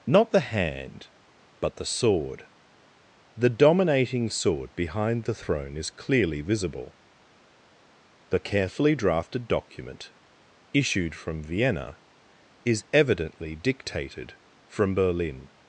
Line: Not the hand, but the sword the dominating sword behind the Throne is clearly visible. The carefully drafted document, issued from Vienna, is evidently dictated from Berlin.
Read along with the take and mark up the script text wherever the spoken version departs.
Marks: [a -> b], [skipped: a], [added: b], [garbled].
Not the hand, but the sword the dominating sword behind the Throne is clearly visible. The carefully drafted document, issued from Vienna, is evidently dictated from Berlin.